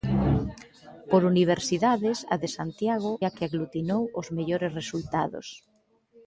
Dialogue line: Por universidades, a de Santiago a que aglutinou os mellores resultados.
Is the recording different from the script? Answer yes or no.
no